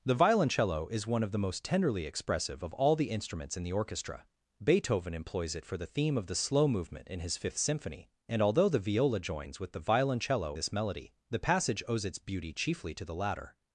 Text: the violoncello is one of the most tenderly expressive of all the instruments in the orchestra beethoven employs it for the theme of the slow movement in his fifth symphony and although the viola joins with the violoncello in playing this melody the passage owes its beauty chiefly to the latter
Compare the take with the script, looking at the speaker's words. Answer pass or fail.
fail